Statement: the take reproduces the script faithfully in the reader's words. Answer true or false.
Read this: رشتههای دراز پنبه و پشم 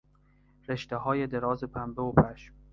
true